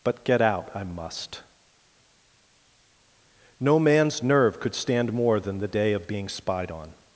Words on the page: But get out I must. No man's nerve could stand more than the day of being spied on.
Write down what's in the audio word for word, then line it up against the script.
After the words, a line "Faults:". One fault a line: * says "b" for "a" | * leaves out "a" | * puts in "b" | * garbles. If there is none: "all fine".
But get out I must. No man's nerve could stand more than the day of being spied on.
Faults:
all fine